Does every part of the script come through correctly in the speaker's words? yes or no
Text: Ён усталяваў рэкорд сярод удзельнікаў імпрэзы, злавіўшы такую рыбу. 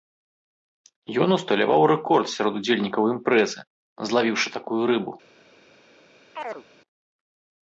yes